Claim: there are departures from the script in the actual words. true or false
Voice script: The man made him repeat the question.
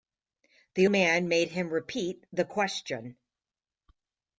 false